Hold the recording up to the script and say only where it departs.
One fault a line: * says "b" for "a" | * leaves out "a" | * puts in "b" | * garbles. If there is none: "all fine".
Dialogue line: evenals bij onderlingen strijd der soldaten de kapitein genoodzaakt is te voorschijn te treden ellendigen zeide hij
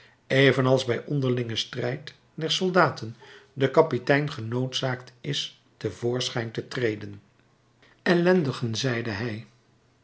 all fine